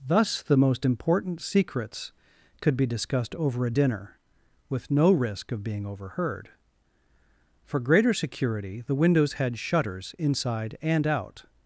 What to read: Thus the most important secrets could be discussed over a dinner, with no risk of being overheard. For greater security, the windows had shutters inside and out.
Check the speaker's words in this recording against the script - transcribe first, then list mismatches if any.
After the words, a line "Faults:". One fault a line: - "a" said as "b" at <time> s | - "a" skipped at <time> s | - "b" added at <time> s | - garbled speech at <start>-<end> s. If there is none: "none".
Thus the most important secrets could be discussed over a dinner, with no risk of being overheard. For greater security, the windows had shutters inside and out.
Faults:
none